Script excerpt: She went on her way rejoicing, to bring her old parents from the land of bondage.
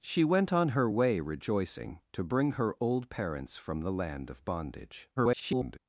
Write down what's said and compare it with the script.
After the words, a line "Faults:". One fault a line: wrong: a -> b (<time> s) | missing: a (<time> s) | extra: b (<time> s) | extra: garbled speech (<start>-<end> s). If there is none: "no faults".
She went on her way rejoicing, to bring her old parents from the land of bondage. [garbled]
Faults:
extra: garbled speech (5.2-5.8 s)